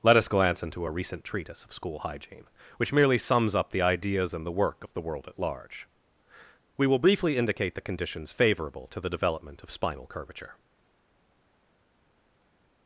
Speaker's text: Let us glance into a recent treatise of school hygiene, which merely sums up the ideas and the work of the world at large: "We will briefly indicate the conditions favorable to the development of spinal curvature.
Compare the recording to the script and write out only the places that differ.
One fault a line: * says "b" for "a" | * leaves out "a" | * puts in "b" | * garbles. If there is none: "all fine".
all fine